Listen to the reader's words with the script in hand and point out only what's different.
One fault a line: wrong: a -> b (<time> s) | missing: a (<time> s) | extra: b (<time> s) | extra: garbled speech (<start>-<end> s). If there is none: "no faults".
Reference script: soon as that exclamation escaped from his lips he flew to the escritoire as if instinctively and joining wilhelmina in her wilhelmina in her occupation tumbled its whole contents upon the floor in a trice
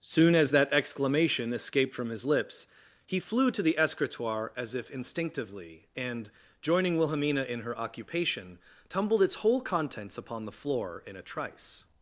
missing: wilhelmina in her (7.8 s)